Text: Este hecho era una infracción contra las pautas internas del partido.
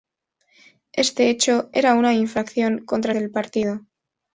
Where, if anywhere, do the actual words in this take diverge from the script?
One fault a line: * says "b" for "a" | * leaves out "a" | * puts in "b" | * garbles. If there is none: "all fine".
* leaves out "las pautas internas"